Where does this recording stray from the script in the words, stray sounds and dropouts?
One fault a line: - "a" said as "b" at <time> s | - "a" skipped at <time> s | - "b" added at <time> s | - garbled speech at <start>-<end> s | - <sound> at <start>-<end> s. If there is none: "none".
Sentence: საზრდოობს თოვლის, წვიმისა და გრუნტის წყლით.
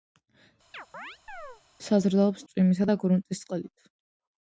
- chirp at 0.7-1.6 s
- "თოვლის" skipped at 2.5 s